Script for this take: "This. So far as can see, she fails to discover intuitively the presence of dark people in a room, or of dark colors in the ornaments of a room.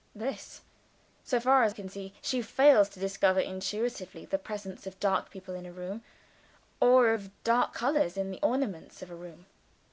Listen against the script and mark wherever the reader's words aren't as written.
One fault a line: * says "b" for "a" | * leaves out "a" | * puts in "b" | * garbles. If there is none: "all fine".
all fine